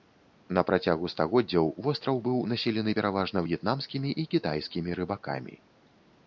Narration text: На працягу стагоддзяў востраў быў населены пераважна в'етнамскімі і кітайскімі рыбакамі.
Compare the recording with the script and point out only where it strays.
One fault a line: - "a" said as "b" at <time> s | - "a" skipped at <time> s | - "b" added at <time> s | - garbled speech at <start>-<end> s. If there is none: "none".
none